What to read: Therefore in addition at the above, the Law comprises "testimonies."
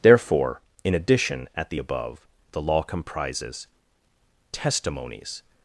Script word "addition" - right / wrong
right